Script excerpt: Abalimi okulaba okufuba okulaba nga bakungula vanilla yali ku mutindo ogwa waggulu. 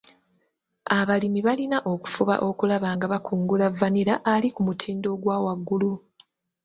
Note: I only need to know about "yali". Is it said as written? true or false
false